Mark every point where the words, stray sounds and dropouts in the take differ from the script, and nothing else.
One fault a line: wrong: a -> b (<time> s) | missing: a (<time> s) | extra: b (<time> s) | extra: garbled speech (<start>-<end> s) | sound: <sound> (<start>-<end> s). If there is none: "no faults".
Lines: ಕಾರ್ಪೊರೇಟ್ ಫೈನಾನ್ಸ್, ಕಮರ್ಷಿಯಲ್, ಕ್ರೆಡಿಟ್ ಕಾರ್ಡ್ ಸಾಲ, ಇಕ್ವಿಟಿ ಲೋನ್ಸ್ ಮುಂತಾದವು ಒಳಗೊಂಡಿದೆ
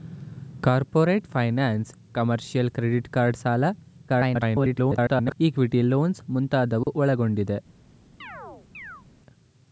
extra: garbled speech (4.1-5.4 s)
sound: dropout (6.8-6.9 s)
sound: chirp (8.2-9.0 s)